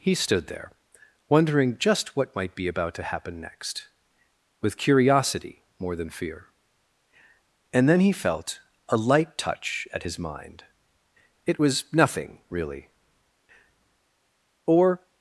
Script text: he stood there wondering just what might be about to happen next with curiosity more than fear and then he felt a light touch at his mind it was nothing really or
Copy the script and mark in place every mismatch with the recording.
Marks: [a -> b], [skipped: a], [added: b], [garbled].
he stood there wondering just what might be about to happen next with curiosity more than fear and then he felt a light touch at his mind it was nothing really or